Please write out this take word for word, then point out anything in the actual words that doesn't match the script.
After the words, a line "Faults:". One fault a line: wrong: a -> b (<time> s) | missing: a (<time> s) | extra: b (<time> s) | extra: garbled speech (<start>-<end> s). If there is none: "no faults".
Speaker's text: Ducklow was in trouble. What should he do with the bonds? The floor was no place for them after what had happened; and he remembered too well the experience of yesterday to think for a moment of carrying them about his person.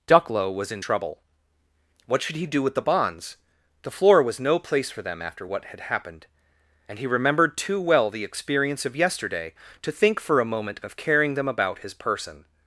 Ducklow was in trouble. What should he do with the bonds? The floor was no place for them after what had happened; and he remembered too well the experience of yesterday to think for a moment of carrying them about his person.
Faults:
no faults